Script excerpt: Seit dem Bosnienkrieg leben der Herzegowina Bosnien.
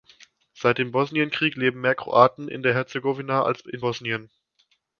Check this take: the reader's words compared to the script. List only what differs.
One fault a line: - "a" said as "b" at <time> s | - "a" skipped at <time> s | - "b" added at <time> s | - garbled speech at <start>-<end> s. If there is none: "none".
- "mehr Kroaten in" added at 1.8 s
- "als in" added at 3.4 s